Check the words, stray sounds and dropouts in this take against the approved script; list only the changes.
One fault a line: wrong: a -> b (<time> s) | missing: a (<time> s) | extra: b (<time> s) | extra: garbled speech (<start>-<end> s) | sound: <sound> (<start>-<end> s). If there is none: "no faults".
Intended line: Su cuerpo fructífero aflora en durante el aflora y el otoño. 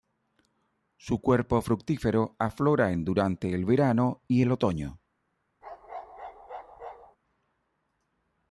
wrong: aflora -> verano (3.6 s)
sound: bark (5.6-7.2 s)